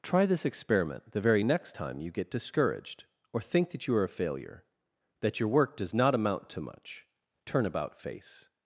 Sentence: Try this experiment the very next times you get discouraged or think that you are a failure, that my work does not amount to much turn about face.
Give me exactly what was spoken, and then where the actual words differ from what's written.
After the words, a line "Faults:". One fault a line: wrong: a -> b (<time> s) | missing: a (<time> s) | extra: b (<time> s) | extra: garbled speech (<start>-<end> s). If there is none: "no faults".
Try this experiment the very next time you get discouraged or think that you are a failure, that your work does not amount to much turn about face.
Faults:
wrong: times -> time (1.7 s)
wrong: my -> your (5.4 s)